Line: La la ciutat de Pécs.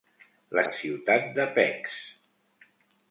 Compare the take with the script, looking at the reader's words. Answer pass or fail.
pass